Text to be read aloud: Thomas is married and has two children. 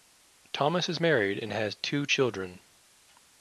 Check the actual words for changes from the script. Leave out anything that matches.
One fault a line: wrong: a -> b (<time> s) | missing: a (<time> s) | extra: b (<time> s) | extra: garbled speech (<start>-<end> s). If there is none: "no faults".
no faults